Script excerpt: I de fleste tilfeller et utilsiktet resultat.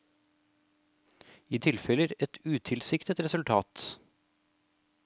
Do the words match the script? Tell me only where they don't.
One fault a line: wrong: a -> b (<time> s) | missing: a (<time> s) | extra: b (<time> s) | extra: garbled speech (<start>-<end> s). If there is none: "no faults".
missing: de fleste (1.6 s)